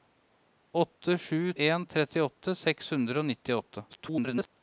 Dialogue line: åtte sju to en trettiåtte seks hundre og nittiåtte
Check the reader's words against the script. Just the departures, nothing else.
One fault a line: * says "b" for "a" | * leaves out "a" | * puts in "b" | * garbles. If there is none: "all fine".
* leaves out "to"
* garbles